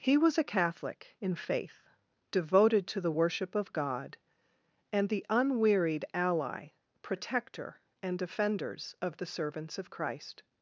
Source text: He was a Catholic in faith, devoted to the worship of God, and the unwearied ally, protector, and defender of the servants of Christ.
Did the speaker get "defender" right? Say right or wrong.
wrong